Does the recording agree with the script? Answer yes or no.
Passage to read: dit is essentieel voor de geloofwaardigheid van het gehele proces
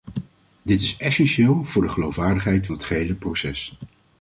no